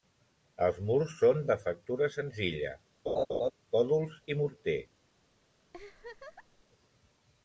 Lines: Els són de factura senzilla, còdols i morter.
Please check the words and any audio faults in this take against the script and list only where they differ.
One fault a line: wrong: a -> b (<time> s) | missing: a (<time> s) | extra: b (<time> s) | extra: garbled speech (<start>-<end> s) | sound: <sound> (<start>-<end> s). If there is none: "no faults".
extra: murs (0.9 s)
sound: laugh (3.1-3.5 s)
sound: laugh (5.7-6.6 s)